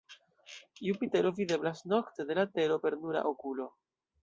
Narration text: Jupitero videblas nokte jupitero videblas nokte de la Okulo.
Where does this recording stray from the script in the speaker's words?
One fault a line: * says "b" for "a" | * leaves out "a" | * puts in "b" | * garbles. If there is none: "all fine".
* says "de la Tero per nura" for "jupitero videblas nokte de la"